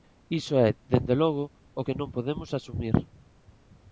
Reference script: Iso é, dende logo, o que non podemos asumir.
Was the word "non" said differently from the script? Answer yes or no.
no